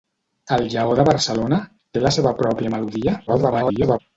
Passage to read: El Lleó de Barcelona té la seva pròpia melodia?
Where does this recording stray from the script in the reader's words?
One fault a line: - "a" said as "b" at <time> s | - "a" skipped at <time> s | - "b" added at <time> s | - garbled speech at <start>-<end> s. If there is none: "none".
- garbled speech at 3.3-4.0 s